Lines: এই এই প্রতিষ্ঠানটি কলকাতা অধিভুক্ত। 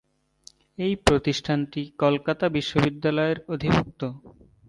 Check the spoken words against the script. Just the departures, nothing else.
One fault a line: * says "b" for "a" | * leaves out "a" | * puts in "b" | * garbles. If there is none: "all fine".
* leaves out "এই"
* puts in "বিশ্ববিদ্যালয়ের"